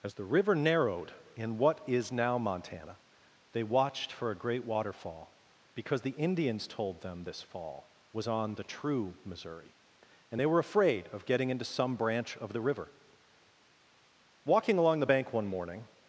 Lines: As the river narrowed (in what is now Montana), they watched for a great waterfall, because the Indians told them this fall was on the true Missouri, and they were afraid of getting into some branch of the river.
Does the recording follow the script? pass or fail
fail